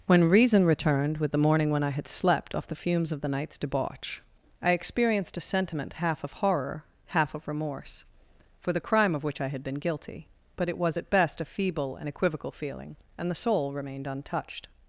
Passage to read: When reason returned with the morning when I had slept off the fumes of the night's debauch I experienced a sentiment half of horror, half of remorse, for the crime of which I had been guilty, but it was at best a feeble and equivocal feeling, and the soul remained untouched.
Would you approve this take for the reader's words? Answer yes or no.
yes